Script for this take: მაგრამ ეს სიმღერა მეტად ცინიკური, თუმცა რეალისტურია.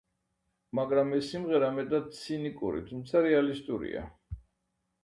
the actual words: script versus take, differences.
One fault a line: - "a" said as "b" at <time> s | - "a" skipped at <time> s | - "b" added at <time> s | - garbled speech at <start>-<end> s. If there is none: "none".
none